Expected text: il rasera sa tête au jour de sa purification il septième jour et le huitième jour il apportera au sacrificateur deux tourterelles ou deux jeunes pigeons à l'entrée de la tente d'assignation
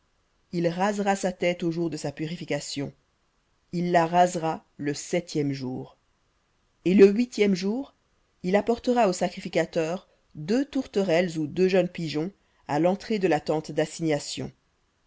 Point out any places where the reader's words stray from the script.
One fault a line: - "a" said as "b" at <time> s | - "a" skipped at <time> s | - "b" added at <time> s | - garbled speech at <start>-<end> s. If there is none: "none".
- "la rasera le" added at 3.9 s